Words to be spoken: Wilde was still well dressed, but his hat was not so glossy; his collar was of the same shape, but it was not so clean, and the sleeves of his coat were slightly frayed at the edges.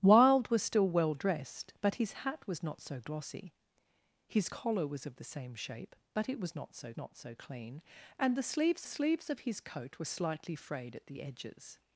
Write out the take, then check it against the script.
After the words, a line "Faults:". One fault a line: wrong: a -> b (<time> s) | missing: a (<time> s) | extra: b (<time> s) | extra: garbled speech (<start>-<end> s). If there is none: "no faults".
Wilde was still well dressed, but his hat was not so glossy; his collar was of the same shape, but it was not so not so clean, and the sleeves sleeves of his coat were slightly frayed at the edges.
Faults:
extra: not so (7.0 s)
extra: sleeves (8.8 s)